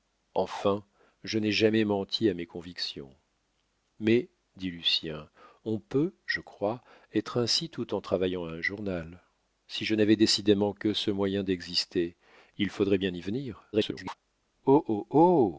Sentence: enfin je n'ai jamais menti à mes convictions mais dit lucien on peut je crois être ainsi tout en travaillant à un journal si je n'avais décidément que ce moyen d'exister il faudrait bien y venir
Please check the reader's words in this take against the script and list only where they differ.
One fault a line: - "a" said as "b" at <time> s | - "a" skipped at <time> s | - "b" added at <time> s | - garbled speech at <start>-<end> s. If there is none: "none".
- garbled speech at 13.7-14.1 s